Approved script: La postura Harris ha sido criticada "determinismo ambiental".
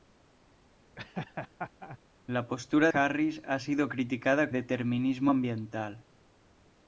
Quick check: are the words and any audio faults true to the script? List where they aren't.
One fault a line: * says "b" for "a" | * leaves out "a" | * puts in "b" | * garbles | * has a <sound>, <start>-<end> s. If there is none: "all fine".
* has a laugh, 1.0-2.0 s